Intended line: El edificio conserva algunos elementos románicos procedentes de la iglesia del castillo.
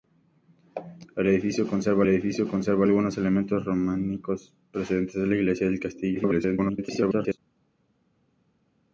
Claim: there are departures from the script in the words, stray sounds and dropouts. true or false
true